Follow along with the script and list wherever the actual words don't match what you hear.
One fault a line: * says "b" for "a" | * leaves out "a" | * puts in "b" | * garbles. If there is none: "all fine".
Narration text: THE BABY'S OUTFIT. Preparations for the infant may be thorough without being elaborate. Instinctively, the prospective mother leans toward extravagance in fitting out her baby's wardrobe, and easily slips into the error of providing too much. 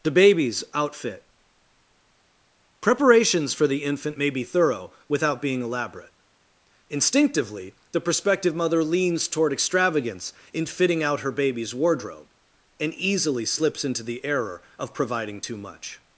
all fine